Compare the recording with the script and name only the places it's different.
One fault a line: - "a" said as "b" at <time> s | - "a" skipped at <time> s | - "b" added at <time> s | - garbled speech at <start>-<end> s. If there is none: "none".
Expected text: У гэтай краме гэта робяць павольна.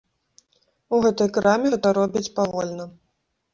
none